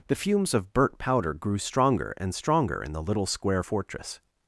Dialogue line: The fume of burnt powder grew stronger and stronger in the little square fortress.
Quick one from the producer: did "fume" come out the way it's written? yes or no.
no